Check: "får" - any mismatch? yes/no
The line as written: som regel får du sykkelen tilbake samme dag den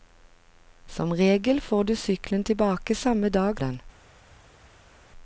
no